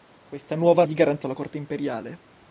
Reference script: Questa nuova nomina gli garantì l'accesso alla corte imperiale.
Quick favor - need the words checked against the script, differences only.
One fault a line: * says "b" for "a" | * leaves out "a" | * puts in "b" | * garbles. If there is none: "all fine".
* leaves out "nomina"
* leaves out "l'accesso"